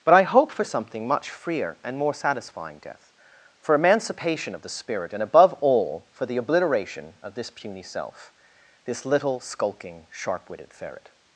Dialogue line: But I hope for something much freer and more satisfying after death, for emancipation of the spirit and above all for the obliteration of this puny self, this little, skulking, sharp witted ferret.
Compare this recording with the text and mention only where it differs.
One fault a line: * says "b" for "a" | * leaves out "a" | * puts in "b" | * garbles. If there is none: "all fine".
* leaves out "after"